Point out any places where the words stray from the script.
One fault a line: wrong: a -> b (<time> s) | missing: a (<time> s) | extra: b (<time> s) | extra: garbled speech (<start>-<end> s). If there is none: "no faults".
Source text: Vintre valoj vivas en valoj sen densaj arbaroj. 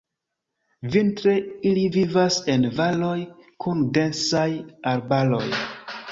wrong: valoj -> ili (1.7 s)
wrong: sen -> kun (3.7 s)